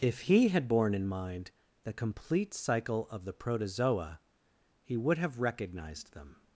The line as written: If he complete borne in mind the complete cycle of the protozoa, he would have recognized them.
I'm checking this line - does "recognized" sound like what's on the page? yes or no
yes